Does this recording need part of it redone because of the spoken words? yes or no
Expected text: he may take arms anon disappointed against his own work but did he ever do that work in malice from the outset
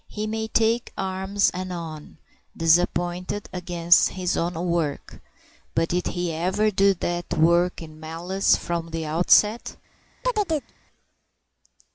no